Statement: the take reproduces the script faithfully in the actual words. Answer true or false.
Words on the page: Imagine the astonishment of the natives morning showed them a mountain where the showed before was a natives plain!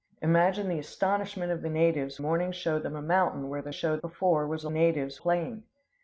true